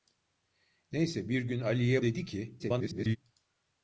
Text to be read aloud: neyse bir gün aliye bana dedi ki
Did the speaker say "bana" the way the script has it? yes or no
no